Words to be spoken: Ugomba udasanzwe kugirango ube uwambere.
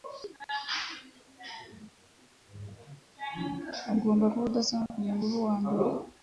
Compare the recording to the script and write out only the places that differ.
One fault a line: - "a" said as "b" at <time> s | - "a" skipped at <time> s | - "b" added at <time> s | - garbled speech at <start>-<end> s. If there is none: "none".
- "kuba" added at 4.3 s